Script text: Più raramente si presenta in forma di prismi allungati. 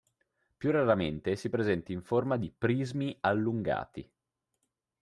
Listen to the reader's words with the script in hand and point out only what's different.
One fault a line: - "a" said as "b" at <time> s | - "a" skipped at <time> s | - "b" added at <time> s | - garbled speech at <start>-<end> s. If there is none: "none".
none